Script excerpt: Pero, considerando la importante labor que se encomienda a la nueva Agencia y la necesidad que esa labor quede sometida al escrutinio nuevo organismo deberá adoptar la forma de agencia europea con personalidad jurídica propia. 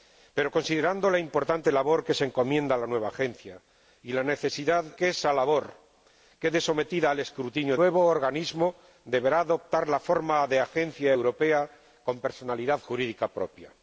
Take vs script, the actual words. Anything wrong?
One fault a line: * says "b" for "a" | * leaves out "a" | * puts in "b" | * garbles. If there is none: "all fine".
all fine